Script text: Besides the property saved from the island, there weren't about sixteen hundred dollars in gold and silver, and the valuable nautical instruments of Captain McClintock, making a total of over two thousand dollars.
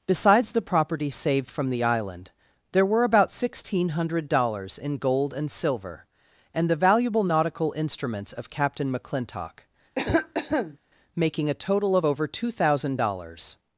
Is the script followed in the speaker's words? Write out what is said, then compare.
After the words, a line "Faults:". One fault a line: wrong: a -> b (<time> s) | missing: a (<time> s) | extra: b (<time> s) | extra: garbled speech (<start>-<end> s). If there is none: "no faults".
Besides the property saved from the island, there were about sixteen hundred dollars in gold and silver, and the valuable nautical instruments of Captain McClintock, making a total of over two thousand dollars.
Faults:
wrong: weren't -> were (2.9 s)